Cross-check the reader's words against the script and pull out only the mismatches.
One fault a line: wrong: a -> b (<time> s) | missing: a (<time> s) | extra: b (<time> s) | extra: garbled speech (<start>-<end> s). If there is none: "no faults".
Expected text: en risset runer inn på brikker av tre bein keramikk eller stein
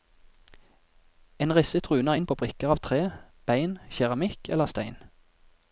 no faults